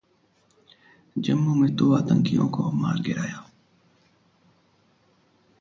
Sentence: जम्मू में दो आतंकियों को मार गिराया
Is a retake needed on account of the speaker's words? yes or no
no